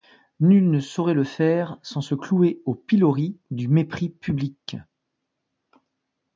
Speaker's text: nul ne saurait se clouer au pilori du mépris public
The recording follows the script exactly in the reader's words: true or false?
false